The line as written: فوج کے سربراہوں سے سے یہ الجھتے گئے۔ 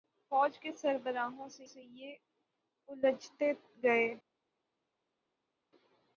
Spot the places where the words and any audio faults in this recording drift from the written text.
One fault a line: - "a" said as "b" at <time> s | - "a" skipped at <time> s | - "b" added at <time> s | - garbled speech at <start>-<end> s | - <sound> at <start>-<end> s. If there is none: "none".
none